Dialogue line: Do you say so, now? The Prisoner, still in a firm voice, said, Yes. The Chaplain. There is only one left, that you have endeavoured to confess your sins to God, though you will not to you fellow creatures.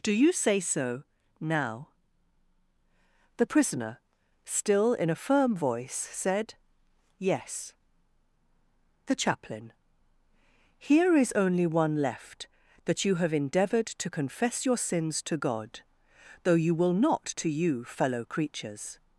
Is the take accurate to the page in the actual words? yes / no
no